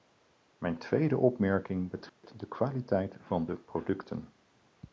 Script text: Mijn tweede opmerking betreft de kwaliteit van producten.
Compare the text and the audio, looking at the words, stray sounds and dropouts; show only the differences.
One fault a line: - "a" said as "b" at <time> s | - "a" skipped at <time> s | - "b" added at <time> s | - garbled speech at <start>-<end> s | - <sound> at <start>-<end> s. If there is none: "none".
- dropout at 2.1-2.2 s
- "de" added at 3.4 s